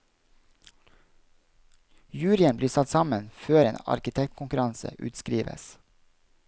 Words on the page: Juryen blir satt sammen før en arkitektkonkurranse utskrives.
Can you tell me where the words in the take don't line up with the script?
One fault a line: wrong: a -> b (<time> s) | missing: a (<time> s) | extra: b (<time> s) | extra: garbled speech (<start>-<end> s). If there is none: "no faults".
no faults